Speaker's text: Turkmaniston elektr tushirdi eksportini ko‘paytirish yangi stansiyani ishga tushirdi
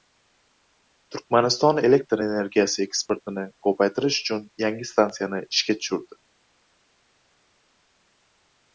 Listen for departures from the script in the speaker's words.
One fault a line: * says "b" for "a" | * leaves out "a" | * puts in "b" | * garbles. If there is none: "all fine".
* says "energiyasi" for "tushirdi"
* puts in "uchun"